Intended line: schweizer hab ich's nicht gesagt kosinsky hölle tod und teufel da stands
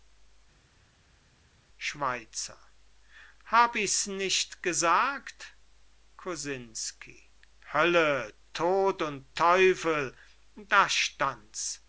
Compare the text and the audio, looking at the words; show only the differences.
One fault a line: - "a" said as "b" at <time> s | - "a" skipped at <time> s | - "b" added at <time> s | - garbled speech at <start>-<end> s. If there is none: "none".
none